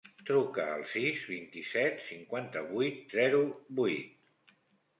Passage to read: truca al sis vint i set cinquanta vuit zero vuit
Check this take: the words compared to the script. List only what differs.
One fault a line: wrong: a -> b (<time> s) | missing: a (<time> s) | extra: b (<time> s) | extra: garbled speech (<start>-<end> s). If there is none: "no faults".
no faults